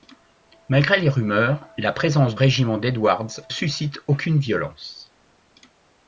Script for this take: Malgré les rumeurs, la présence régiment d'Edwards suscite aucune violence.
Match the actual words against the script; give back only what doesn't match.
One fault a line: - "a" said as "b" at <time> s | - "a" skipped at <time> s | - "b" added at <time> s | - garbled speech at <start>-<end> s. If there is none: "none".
none